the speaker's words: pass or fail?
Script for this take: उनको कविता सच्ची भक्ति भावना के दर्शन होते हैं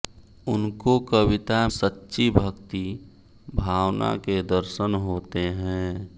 pass